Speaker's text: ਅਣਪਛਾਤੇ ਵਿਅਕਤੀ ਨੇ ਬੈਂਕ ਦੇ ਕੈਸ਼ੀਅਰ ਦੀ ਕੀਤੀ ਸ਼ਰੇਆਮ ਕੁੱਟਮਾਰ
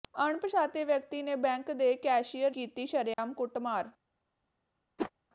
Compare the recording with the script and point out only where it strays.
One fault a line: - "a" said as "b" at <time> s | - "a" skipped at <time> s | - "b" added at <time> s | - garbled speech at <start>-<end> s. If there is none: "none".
- "ਦੀ" skipped at 2.5 s